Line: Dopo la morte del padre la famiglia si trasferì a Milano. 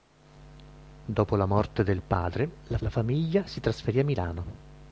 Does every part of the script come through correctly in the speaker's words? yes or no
no